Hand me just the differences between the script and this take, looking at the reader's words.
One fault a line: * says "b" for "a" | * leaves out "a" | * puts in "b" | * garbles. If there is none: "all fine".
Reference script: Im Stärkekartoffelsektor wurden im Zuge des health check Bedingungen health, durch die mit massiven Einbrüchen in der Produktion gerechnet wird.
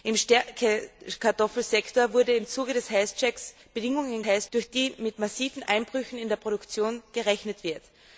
all fine